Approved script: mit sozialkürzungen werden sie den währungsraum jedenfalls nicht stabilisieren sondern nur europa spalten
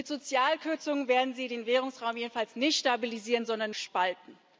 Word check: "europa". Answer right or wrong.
wrong